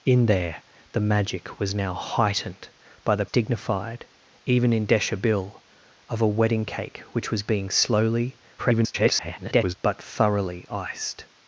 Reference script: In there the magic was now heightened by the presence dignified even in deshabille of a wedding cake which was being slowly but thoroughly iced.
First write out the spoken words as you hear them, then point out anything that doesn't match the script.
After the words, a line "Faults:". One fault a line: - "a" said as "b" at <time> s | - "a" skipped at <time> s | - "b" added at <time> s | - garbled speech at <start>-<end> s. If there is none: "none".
In there the magic was now heightened by the dignified even in deshabille of a wedding cake which was being slowly [garbled] but thoroughly iced.
Faults:
- "presence" skipped at 3.2 s
- garbled speech at 8.6-9.7 s